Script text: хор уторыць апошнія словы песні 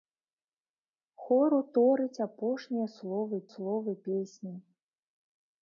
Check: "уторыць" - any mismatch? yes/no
no